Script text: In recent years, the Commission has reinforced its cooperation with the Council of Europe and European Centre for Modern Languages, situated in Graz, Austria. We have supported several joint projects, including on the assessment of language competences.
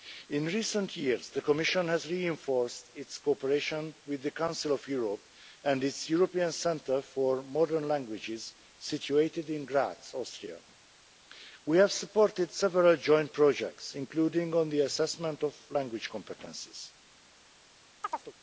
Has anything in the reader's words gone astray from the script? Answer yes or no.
yes